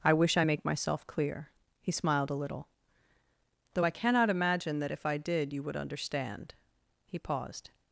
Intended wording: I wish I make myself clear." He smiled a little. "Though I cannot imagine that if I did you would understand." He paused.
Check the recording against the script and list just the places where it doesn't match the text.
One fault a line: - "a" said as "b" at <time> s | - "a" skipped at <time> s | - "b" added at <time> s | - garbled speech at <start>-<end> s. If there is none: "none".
none